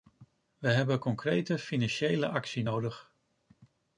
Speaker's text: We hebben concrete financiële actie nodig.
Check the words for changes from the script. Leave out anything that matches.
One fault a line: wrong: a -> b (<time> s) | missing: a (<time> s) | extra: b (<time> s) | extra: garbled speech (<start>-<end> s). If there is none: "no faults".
no faults